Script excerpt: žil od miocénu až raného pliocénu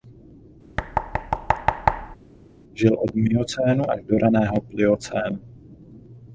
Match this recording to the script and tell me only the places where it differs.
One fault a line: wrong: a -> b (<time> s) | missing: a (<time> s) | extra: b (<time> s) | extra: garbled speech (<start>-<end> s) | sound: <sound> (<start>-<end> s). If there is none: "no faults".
sound: thud (0.8-2.2 s)
extra: do (4.0 s)